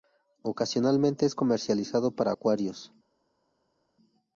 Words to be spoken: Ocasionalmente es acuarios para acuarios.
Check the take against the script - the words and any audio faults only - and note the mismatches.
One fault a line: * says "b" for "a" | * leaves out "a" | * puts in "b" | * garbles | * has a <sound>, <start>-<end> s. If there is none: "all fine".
* says "comercializado" for "acuarios"